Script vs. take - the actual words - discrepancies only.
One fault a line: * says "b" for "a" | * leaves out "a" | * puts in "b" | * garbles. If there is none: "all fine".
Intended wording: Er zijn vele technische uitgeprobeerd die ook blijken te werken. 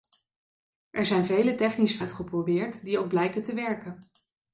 all fine